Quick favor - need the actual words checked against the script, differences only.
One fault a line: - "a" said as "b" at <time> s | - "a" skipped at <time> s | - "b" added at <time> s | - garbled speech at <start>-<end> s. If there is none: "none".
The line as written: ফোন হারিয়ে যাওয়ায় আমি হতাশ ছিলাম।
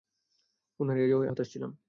- "আমি" skipped at 1.3 s